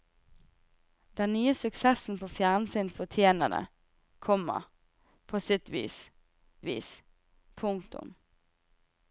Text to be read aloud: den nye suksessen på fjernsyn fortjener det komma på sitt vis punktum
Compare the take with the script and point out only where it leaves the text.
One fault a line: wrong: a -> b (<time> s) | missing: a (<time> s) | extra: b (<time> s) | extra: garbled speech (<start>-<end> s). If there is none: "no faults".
extra: vis (6.6 s)